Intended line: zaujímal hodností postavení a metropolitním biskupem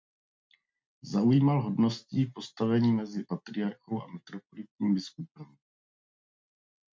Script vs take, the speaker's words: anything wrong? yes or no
yes